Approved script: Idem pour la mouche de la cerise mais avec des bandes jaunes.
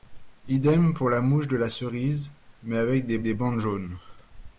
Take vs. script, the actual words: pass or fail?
fail